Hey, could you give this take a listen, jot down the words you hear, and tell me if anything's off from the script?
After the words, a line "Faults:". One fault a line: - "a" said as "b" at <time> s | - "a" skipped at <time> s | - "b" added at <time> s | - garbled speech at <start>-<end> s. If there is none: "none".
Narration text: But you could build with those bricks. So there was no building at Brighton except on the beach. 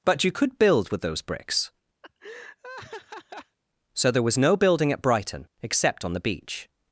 But you could build with those bricks. So there was no building at Brighton except on the beach.
Faults:
none